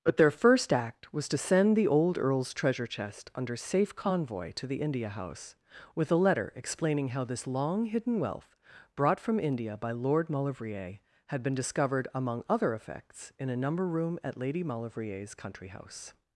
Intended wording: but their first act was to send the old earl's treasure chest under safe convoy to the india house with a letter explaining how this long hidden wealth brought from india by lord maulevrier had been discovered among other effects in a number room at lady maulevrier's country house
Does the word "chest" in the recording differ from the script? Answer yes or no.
no